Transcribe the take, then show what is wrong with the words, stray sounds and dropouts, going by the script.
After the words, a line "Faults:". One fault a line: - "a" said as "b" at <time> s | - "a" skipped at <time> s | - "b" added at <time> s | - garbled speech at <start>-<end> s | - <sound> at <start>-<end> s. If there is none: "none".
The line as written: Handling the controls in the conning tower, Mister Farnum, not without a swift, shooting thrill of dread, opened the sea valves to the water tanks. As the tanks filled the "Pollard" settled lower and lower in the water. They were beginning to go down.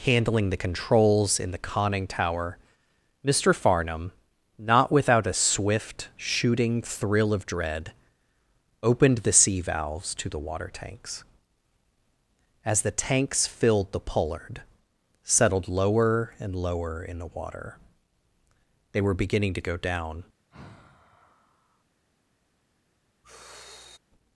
Handling the controls in the conning tower, Mister Farnum, not without a swift, shooting thrill of dread, opened the sea valves to the water tanks. As the tanks filled the "Pollard" settled lower and lower in the water. They were beginning to go down.
Faults:
- sigh at 20.5-21.8 s
- sigh at 23.2-24.0 s